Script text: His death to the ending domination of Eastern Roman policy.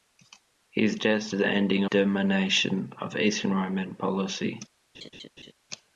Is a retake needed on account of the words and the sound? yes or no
yes